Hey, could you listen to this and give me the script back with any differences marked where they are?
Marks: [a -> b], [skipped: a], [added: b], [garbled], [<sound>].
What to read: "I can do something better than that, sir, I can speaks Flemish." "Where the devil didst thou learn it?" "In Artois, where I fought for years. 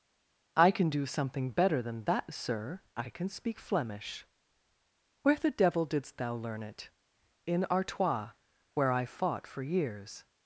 "I can do something better than that, sir, I can [speaks -> speak] Flemish." "Where the devil didst thou learn it?" "In Artois, where I fought for years.